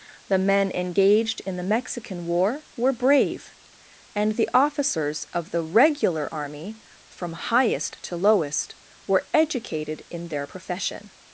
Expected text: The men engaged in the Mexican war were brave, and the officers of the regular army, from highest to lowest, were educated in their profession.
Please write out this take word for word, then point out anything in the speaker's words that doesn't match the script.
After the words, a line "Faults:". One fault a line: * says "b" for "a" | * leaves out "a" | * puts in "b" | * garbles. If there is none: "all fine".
The men engaged in the Mexican war were brave, and the officers of the regular army, from highest to lowest, were educated in their profession.
Faults:
all fine